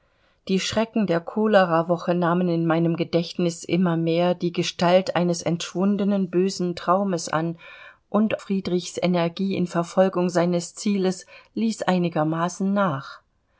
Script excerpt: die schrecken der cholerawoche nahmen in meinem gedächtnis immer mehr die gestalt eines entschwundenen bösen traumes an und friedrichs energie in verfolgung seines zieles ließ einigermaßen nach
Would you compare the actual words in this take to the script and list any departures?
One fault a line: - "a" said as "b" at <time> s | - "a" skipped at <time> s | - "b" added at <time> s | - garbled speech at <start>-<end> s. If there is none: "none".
none